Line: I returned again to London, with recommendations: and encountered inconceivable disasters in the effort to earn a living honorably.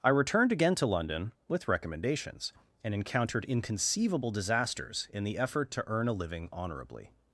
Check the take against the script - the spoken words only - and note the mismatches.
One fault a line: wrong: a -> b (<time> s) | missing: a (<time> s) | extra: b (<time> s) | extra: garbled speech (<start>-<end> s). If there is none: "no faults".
no faults